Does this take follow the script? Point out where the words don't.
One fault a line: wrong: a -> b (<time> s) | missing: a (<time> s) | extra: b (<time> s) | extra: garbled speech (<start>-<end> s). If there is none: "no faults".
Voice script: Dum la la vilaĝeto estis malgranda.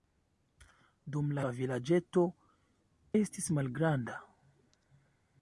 no faults